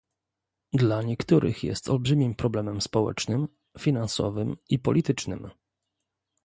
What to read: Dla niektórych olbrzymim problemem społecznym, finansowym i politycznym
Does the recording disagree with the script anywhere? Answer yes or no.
yes